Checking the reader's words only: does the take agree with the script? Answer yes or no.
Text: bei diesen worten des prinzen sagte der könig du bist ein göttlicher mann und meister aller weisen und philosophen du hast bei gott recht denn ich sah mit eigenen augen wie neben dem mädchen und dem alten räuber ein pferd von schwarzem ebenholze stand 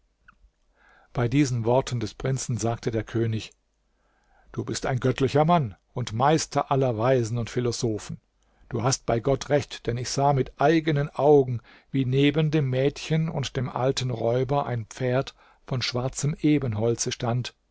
yes